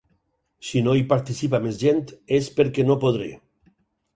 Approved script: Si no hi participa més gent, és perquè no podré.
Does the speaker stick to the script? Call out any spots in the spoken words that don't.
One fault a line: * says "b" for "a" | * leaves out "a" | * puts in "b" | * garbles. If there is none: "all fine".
all fine